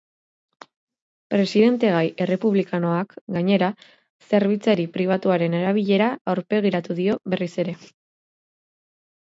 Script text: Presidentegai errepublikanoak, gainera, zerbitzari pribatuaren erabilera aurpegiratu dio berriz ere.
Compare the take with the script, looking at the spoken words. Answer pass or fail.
pass